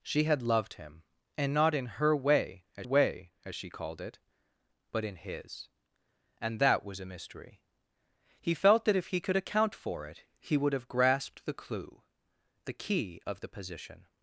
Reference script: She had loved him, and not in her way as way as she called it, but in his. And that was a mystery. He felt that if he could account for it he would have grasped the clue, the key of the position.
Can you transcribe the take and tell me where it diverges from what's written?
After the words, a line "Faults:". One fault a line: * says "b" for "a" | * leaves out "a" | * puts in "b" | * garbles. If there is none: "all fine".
She had loved him, and not in her way as way as she called it, but in his. And that was a mystery. He felt that if he could account for it he would have grasped the clue, the key of the position.
Faults:
all fine